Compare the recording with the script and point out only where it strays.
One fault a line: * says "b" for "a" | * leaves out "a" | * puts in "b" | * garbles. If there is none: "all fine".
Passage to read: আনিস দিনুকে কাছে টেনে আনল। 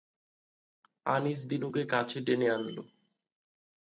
all fine